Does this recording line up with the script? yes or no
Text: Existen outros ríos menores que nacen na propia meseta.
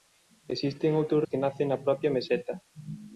no